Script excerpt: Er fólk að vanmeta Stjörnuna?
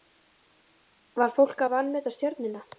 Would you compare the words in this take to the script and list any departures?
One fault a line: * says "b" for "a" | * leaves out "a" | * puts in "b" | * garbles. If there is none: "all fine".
* says "Var" for "Er"